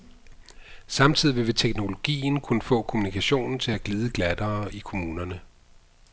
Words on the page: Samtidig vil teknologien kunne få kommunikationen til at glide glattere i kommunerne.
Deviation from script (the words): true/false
false